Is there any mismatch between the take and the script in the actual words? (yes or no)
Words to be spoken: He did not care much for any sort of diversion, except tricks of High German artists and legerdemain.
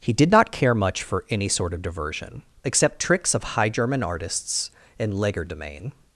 no